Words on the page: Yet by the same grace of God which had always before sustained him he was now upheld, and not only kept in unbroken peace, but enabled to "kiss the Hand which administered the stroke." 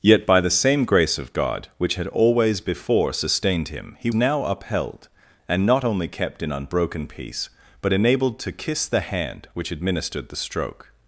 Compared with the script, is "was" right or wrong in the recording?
wrong